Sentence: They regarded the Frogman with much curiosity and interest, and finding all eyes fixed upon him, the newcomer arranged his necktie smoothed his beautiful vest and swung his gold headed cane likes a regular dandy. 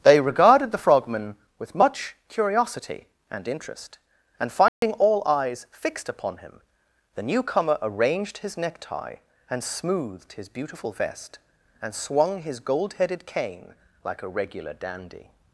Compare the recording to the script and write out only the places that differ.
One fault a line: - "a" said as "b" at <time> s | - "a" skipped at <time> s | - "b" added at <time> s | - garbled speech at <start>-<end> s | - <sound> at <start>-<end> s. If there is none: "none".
- dropout at 4.7-4.8 s
- "and" added at 9.5 s
- "likes" said as "like" at 14.0 s